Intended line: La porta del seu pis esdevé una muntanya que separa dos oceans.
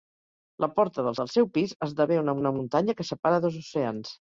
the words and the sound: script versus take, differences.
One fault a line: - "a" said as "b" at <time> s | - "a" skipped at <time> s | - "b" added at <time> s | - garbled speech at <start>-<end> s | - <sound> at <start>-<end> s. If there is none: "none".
- "del" added at 1.2 s
- "una" added at 2.4 s